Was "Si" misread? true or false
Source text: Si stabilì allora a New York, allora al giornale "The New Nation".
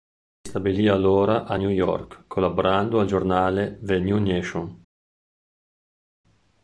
false